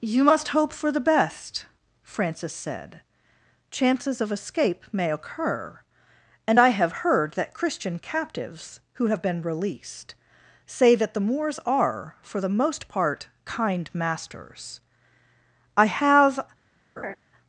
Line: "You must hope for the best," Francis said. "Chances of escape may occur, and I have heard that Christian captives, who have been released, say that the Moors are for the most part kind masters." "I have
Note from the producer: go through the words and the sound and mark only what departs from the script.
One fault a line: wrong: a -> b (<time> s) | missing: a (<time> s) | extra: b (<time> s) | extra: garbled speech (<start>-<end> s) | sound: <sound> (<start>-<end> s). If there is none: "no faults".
sound: laugh (17.0-17.2 s)